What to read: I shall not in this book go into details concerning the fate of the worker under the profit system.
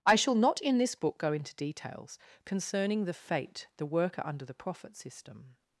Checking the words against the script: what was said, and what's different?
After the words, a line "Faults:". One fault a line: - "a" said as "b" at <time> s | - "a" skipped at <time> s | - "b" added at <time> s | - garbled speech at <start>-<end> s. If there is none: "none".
I shall not in this book go into details concerning the fate the worker under the profit system.
Faults:
- "of" skipped at 3.7 s